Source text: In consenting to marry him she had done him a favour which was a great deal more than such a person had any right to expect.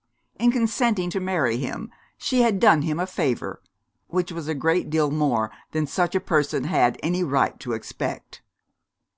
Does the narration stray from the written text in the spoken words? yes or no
no